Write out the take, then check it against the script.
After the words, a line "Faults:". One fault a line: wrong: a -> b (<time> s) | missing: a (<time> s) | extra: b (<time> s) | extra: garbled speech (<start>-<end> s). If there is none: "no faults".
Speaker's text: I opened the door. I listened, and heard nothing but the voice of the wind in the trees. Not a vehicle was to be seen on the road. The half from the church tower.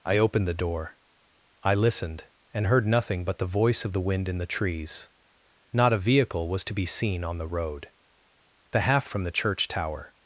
I opened the door. I listened, and heard nothing but the voice of the wind in the trees. Not a vehicle was to be seen on the road. The half from the church tower.
Faults:
no faults